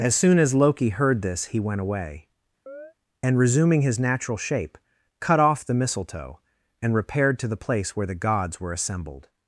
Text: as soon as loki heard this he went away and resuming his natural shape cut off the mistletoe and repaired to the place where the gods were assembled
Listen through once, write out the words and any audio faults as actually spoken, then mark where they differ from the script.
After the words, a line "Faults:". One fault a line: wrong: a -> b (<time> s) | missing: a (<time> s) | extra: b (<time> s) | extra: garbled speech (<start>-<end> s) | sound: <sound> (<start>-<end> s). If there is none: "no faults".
as soon as loki heard this he went away and resuming his natural shape cut off the mistletoe and repaired to the place where the gods were assembled
Faults:
sound: chirp (2.7-2.9 s)